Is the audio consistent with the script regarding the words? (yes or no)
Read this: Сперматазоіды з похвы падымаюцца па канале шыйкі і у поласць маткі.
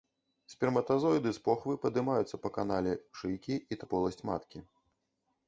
yes